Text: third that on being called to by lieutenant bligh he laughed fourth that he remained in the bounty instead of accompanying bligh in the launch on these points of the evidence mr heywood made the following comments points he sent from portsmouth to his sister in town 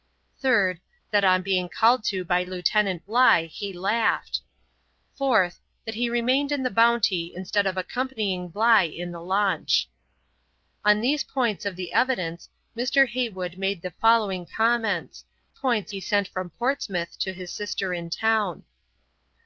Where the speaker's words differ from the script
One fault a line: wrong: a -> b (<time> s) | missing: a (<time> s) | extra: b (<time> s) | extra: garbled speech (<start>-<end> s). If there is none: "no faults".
no faults